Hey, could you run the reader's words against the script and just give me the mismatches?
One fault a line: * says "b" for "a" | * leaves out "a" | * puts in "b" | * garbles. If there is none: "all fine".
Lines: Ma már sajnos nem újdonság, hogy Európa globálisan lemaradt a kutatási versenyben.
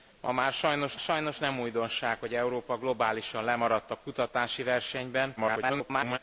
* puts in "sajnos"
* garbles